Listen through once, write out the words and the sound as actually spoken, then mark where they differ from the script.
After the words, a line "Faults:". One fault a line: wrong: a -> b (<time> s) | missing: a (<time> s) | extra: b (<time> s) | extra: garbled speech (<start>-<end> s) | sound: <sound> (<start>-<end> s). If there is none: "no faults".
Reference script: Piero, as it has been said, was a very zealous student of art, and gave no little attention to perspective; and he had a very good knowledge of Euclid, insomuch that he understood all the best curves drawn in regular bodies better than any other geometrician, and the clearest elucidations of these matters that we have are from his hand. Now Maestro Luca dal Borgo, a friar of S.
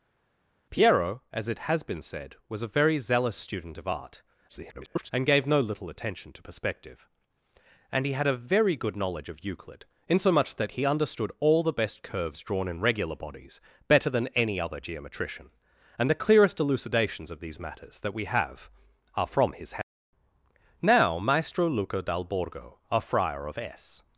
Piero, as it has been said, was a very zealous student of art, [garbled] and gave no little attention to perspective; and he had a very good knowledge of Euclid, insomuch that he understood all the best curves drawn in regular bodies better than any other geometrician, and the clearest elucidations of these matters that we have are from his hand. Now Maestro Luca dal Borgo, a friar of S.
Faults:
extra: garbled speech (4.5-5.1 s)